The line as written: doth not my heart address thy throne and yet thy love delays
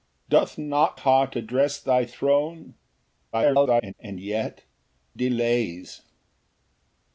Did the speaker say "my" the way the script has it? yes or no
no